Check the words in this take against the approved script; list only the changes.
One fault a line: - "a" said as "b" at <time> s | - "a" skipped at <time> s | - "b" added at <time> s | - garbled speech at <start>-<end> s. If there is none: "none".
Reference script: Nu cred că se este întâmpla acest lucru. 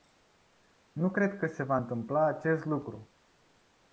- "este" said as "va" at 1.6 s